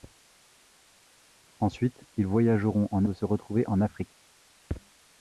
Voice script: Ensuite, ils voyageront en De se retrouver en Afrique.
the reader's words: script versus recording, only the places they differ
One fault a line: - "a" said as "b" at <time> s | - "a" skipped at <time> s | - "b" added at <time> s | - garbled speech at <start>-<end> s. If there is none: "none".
none